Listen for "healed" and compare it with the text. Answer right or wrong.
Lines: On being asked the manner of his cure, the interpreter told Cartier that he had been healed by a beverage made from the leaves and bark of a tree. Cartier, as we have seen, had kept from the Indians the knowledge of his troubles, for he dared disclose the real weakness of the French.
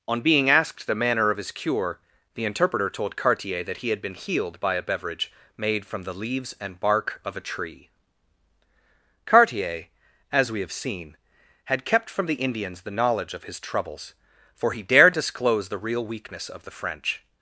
right